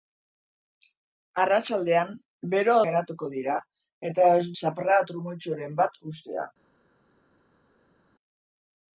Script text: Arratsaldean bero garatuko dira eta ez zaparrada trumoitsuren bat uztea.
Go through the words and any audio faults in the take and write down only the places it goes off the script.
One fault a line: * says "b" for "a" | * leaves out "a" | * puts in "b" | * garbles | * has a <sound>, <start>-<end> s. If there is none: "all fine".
all fine